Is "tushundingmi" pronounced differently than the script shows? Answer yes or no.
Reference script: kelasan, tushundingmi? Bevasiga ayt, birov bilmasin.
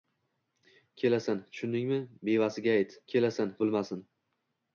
no